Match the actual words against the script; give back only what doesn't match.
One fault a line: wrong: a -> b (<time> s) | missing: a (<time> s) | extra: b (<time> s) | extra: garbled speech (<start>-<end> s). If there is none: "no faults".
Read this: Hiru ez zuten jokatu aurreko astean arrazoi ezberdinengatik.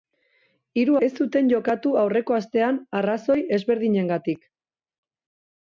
no faults